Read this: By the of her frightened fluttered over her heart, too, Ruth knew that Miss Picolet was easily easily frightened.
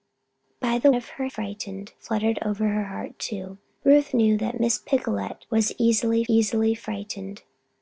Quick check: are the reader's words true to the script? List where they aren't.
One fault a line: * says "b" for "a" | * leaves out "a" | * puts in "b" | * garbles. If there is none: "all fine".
all fine